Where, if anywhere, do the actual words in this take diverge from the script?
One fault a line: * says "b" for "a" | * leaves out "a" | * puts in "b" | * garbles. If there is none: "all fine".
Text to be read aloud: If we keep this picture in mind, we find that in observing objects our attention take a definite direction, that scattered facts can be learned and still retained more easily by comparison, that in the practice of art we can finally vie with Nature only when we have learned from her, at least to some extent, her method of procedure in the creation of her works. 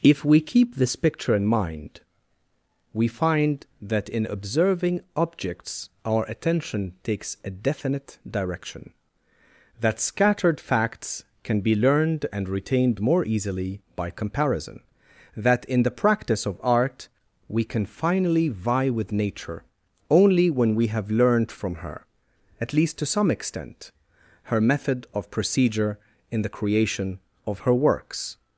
* says "takes" for "take"
* leaves out "still"